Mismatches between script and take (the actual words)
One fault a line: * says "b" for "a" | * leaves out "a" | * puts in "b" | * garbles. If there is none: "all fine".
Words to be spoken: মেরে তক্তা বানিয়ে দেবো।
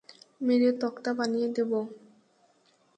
all fine